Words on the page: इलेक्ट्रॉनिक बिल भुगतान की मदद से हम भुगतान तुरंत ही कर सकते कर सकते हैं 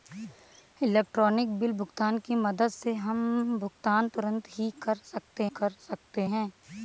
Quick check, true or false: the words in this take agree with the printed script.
true